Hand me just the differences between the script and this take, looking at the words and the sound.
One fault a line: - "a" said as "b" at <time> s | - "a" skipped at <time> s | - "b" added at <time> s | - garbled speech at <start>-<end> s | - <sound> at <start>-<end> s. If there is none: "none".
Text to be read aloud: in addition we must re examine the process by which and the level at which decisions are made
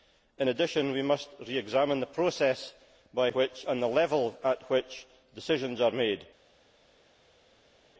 none